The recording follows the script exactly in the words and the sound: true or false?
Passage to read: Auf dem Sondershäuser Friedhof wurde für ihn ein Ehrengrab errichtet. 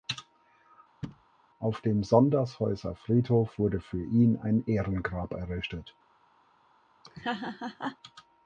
false